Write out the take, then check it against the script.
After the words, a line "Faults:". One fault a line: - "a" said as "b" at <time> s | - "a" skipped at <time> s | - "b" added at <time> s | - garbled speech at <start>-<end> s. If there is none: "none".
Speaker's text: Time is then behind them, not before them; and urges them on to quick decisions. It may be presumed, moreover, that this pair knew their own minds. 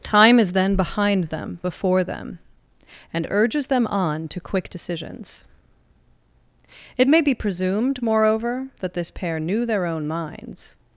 Time is then behind them, before them; and urges them on to quick decisions. It may be presumed, moreover, that this pair knew their own minds.
Faults:
- "not" skipped at 1.6 s